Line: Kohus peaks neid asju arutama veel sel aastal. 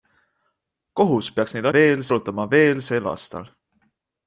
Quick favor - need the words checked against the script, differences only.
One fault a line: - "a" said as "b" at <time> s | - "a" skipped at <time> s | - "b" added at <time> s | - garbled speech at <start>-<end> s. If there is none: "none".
- "asju" said as "veel" at 1.8 s